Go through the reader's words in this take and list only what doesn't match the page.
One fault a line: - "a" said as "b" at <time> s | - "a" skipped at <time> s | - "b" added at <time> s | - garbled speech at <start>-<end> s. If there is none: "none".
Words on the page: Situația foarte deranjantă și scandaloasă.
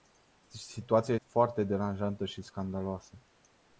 none